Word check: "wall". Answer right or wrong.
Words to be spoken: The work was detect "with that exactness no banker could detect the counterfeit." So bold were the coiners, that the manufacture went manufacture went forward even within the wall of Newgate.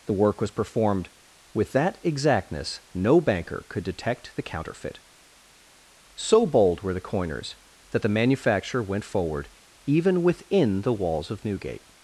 wrong